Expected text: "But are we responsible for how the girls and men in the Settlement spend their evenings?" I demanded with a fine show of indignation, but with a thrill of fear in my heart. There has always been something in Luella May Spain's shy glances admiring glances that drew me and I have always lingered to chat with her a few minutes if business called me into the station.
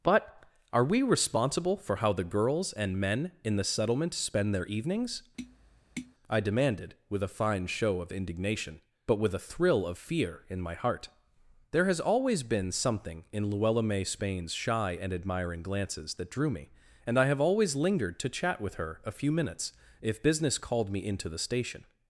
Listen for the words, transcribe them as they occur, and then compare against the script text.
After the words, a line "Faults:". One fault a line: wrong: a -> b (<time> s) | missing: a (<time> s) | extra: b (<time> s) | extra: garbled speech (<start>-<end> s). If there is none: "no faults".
"But are we responsible for how the girls and men in the Settlement spend their evenings?" I demanded with a fine show of indignation, but with a thrill of fear in my heart. There has always been something in Luella May Spain's shy and admiring glances that drew me and I have always lingered to chat with her a few minutes if business called me into the station.
Faults:
wrong: glances -> and (14.9 s)